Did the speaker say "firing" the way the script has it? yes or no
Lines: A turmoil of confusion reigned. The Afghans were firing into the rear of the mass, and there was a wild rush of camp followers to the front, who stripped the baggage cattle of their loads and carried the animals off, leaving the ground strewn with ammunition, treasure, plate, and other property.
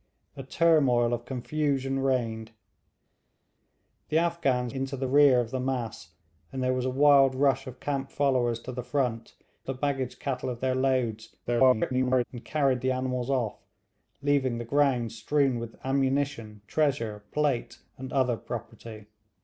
no